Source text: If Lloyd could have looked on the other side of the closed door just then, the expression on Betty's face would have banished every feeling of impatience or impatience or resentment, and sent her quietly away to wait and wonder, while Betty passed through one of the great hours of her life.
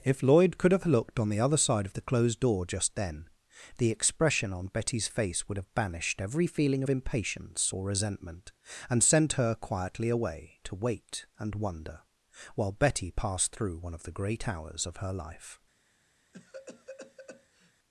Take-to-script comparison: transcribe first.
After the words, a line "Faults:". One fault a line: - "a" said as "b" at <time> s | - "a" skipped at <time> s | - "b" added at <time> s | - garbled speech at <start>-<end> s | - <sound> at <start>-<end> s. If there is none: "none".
If Lloyd could have looked on the other side of the closed door just then, the expression on Betty's face would have banished every feeling of impatience or resentment, and sent her quietly away to wait and wonder, while Betty passed through one of the great hours of her life.
Faults:
- "impatience or" skipped at 7.9 s
- cough at 16.3-17.7 s